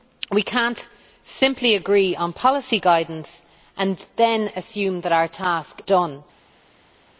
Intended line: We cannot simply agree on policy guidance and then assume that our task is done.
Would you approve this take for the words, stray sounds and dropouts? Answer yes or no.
no